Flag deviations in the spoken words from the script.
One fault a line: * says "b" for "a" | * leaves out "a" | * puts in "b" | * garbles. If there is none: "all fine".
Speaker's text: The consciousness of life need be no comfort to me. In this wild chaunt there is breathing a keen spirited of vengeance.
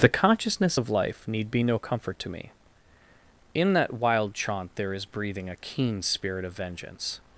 * says "that" for "this"
* says "spirit" for "spirited"